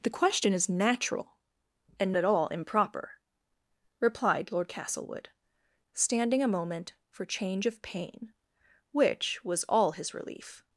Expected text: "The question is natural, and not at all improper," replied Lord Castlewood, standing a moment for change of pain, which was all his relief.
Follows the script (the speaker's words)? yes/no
no